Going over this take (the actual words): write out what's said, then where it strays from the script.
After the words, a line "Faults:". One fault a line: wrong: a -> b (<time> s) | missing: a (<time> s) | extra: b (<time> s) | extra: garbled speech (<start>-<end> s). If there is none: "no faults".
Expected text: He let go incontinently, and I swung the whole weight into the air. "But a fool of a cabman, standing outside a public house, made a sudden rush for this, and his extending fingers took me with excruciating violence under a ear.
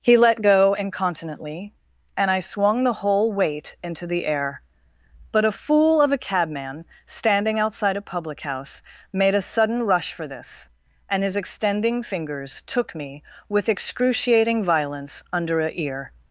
He let go incontinently, and I swung the whole weight into the air. "But a fool of a cabman, standing outside a public house, made a sudden rush for this, and his extending fingers took me with excruciating violence under a ear.
Faults:
no faults